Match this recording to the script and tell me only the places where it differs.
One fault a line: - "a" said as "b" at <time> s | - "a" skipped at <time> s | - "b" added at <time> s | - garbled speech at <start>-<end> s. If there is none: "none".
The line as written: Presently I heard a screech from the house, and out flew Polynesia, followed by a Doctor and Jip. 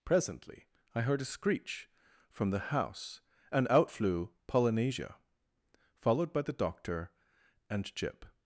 - "a" said as "the" at 6.4 s